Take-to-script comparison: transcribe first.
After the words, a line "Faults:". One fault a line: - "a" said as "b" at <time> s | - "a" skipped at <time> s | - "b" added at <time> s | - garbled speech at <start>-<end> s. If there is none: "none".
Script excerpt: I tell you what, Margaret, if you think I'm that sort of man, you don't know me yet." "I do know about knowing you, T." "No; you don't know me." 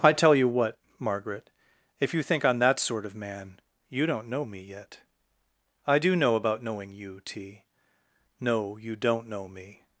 I tell you what, Margaret, if you think I'm that sort of man, you don't know me yet." "I do know about knowing you, T." "No; you don't know me."
Faults:
none